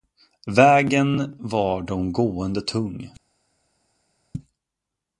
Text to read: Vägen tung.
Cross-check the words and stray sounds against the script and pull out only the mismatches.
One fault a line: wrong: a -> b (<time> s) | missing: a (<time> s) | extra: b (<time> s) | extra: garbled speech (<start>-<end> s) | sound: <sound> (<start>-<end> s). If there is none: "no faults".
extra: var de gående (1.4 s)